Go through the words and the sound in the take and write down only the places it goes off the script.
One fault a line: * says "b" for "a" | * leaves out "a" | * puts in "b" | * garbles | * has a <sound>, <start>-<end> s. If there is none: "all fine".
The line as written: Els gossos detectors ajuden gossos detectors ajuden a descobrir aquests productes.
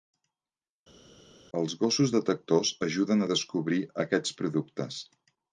* leaves out "gossos detectors ajuden"